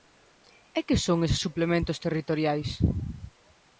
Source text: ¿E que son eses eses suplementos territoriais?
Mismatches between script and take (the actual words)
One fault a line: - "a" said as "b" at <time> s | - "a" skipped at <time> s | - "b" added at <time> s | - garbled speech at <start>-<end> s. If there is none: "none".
- "eses" skipped at 1.4 s